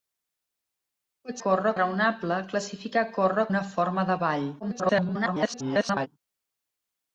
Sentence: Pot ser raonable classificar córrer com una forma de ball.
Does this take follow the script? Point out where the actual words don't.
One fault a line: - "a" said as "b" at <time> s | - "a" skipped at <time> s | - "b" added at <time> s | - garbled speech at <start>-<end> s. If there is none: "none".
- "ser" said as "córrer" at 1.5 s
- "com" skipped at 3.5 s
- garbled speech at 4.6-6.1 s